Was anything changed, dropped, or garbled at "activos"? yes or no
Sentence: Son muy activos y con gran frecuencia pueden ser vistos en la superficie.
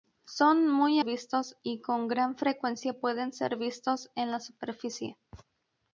yes